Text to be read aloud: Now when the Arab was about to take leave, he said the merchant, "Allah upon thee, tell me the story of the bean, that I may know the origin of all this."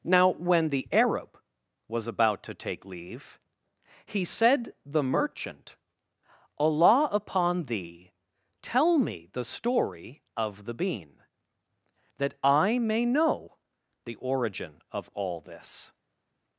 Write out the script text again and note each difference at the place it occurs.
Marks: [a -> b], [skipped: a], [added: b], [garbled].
Now when the Arab was about to take leave, he said the merchant, "Allah upon thee, tell me the story of the bean, that I may know the origin of all this."